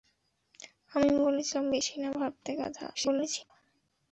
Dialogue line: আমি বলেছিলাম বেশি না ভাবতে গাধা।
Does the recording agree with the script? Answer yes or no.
no